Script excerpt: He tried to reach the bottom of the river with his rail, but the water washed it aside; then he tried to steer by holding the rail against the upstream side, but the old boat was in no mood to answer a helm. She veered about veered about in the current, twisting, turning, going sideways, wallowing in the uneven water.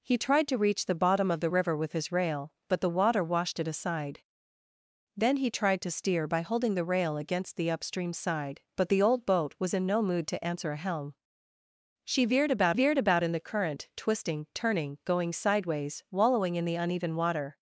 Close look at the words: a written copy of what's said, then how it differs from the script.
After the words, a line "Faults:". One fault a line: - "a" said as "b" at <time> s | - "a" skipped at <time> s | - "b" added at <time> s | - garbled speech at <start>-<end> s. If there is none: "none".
He tried to reach the bottom of the river with his rail, but the water washed it aside; then he tried to steer by holding the rail against the upstream side, but the old boat was in no mood to answer a helm. She veered about veered about in the current, twisting, turning, going sideways, wallowing in the uneven water.
Faults:
none